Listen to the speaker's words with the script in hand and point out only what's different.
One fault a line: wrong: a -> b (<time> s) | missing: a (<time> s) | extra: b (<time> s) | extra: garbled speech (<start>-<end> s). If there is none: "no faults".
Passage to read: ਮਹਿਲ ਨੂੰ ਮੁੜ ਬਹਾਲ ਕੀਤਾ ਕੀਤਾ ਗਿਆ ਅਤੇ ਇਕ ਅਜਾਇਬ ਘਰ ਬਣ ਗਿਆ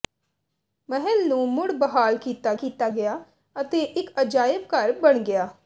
no faults